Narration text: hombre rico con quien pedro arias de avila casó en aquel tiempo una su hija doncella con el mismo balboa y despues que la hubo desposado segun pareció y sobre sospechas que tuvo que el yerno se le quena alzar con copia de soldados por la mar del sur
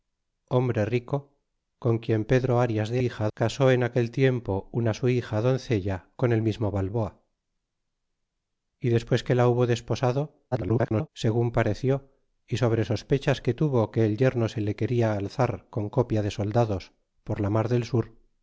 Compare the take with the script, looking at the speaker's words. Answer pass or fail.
fail